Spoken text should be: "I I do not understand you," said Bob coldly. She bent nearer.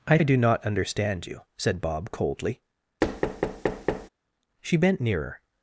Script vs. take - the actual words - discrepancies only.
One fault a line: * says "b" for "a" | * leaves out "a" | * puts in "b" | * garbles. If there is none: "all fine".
all fine